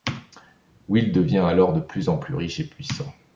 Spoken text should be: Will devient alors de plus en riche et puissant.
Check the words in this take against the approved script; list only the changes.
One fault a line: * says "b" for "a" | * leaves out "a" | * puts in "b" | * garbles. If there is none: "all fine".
* puts in "plus"